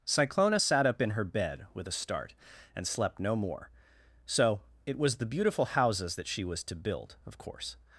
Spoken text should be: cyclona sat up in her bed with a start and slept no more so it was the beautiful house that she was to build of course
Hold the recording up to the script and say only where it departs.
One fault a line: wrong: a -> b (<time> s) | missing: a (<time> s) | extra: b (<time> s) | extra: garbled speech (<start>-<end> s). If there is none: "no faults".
wrong: house -> houses (5.7 s)